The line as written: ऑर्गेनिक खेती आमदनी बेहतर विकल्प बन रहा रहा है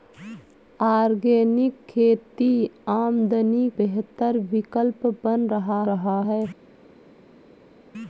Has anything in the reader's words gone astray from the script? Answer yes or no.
no